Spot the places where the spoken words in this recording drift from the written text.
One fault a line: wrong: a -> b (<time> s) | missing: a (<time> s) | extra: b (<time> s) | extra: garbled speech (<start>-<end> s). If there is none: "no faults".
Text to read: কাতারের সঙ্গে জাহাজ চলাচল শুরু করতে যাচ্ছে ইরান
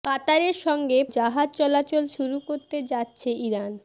no faults